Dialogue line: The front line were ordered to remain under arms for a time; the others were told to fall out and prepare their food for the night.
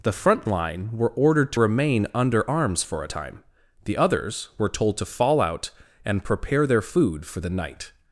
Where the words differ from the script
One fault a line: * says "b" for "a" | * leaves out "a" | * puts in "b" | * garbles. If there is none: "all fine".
all fine